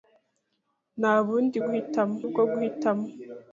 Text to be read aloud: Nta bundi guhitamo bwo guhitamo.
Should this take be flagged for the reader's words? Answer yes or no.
no